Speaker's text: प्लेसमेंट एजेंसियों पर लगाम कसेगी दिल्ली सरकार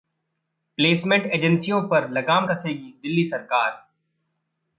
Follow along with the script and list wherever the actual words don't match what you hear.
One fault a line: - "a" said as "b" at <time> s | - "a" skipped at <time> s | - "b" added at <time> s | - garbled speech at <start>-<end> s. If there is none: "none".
none